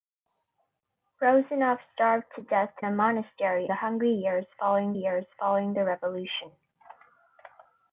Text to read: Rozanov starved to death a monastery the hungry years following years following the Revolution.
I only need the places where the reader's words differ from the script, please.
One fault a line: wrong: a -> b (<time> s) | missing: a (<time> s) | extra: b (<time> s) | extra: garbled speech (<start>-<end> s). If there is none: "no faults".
no faults